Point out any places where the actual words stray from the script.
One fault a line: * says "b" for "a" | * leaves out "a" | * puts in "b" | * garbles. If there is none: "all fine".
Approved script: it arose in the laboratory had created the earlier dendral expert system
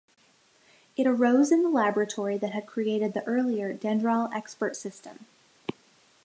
* puts in "that"